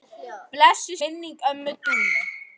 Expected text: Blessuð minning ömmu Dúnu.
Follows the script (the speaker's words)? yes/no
yes